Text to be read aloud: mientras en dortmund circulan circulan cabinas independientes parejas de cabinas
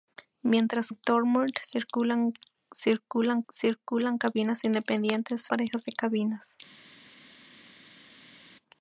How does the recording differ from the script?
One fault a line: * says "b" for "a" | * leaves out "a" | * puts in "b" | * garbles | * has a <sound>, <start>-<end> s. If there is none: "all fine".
all fine